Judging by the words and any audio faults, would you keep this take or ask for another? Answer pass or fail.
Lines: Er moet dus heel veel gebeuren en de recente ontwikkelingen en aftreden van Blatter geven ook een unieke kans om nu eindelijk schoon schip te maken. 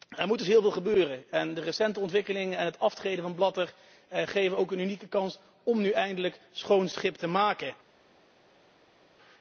fail